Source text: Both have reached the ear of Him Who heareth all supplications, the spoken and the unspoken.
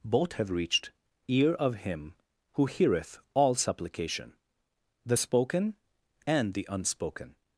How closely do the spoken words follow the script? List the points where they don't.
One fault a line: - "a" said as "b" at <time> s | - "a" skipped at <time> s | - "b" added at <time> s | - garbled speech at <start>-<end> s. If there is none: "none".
- "the" skipped at 0.9 s
- "supplications" said as "supplication" at 3.5 s